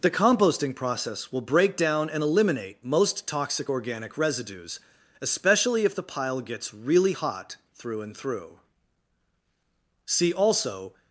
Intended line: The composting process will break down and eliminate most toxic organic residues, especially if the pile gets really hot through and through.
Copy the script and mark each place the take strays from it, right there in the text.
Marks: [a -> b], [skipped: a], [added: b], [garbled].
The composting process will break down and eliminate most toxic organic residues, especially if the pile gets really hot through and through. [added: See also]